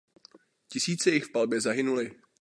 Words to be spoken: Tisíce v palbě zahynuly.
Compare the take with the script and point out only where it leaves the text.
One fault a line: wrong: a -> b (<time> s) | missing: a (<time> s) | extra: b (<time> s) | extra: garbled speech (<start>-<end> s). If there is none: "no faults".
extra: jich (1.1 s)